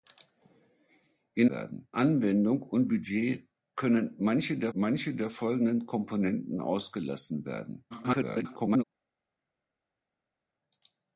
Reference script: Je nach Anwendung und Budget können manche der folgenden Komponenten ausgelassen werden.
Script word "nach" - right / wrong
wrong